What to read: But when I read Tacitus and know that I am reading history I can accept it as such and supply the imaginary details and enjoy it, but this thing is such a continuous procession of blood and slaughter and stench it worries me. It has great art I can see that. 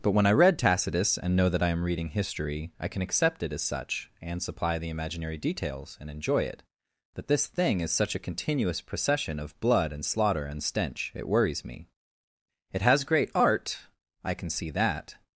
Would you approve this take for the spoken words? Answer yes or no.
no